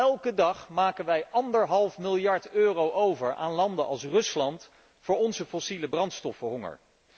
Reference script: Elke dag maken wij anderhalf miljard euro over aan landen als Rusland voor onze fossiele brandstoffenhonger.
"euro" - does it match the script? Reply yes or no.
yes